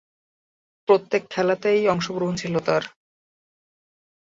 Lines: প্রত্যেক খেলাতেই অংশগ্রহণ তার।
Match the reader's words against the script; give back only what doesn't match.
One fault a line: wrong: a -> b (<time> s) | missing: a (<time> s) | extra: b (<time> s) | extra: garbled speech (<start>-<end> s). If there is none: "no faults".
extra: ছিল (2.3 s)